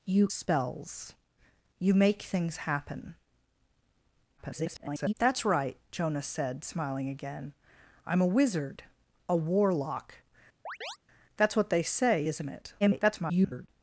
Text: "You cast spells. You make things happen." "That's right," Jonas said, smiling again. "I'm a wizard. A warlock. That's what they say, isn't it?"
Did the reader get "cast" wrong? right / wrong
wrong